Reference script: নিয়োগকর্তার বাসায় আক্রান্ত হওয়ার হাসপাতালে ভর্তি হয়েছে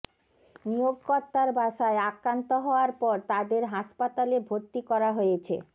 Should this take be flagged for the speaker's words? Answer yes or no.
yes